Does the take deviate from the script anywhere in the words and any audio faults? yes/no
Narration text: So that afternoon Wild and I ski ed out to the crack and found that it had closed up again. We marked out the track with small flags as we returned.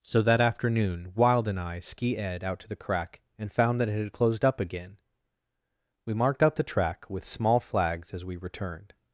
no